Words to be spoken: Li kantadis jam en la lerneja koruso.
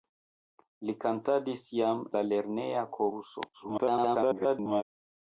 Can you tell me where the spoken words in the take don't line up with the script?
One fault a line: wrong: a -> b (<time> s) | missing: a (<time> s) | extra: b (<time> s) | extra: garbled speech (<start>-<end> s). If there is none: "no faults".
missing: en (2.0 s)
extra: garbled speech (3.5-4.8 s)